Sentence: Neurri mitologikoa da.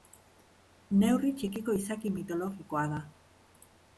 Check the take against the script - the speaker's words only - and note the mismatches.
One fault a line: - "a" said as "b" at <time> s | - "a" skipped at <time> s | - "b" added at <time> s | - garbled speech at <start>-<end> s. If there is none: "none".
- "txikiko izaki" added at 1.4 s